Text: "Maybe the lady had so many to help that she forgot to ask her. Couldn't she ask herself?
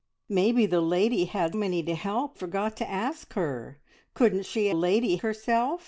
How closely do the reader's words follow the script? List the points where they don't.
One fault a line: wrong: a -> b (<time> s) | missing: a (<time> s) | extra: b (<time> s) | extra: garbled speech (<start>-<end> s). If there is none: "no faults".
missing: so (1.5 s)
missing: that she (2.4 s)
wrong: ask -> lady (4.7 s)